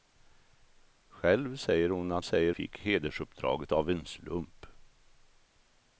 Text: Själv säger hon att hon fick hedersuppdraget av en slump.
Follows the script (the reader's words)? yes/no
no